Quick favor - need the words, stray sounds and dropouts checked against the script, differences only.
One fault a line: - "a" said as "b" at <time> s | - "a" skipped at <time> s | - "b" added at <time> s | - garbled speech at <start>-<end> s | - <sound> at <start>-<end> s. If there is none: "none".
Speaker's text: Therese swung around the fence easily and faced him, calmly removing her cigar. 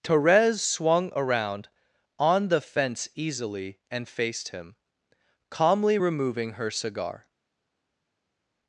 - "on" added at 2.2 s